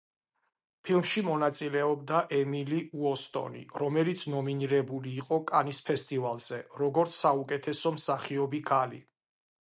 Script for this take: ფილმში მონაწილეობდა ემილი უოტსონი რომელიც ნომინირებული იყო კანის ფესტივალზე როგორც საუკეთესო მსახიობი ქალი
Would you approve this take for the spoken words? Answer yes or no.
yes